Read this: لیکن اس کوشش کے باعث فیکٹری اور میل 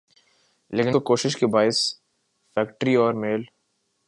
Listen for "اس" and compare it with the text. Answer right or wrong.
wrong